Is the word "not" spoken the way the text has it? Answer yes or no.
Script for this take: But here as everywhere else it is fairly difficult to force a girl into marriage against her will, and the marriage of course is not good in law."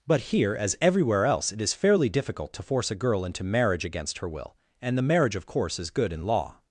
no